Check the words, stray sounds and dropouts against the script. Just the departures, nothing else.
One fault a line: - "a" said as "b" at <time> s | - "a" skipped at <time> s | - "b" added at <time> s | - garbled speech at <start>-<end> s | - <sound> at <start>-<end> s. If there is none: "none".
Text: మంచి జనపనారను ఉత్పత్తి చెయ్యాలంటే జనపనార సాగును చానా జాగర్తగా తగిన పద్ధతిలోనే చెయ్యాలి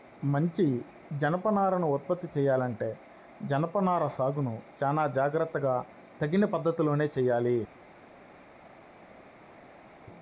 none